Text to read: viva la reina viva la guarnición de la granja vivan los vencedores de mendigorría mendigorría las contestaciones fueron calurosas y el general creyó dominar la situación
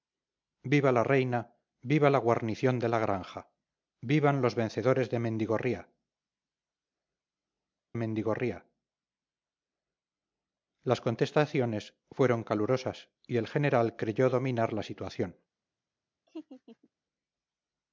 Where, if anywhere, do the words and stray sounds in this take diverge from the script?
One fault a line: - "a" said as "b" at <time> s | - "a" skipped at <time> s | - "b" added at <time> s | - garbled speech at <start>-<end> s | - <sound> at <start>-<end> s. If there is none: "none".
- laugh at 16.3-16.9 s